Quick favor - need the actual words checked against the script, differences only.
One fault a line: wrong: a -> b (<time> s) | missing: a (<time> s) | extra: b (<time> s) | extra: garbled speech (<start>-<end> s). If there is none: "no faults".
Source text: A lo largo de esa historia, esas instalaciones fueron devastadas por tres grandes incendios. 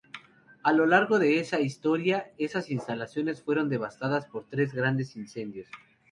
no faults